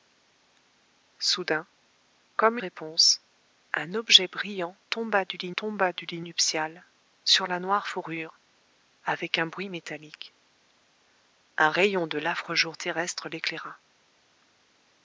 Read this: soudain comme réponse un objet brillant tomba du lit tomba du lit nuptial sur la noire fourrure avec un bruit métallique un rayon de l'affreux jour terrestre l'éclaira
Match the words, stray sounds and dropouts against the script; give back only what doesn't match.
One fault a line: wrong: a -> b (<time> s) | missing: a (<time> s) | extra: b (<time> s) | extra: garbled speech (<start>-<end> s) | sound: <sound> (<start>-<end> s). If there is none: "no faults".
no faults